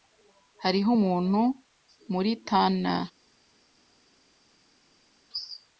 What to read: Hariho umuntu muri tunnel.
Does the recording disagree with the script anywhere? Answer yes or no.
no